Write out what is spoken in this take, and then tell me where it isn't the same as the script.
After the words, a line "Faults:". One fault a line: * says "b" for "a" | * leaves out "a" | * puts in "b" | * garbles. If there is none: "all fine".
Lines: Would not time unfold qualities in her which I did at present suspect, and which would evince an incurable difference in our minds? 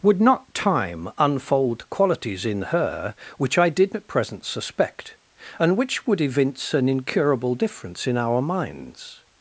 Would not time unfold qualities in her which I did at present suspect, and which would evince an incurable difference in our minds?
Faults:
all fine